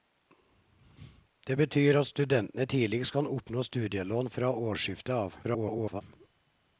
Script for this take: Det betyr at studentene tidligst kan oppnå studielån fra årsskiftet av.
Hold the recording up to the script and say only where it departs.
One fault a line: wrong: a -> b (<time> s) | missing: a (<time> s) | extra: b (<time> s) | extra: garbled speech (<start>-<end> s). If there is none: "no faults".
extra: garbled speech (5.4-6.0 s)